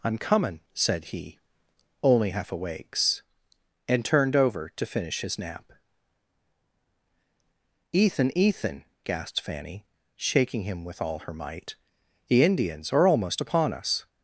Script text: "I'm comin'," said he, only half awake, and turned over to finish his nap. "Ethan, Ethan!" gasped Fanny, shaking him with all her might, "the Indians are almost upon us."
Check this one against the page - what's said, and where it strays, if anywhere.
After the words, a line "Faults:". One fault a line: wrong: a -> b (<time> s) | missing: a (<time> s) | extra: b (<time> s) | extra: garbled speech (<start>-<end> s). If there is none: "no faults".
"I'm comin'," said he, only half awakes, and turned over to finish his nap. "Ethan, Ethan!" gasped Fanny, shaking him with all her might, "the Indians are almost upon us."
Faults:
wrong: awake -> awakes (2.5 s)